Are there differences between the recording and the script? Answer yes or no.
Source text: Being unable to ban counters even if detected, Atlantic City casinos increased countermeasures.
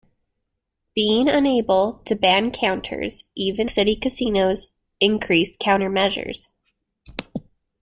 yes